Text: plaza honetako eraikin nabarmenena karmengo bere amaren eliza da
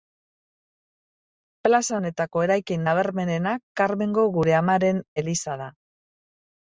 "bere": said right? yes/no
no